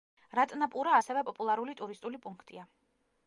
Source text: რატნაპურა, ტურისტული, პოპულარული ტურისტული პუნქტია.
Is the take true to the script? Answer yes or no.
no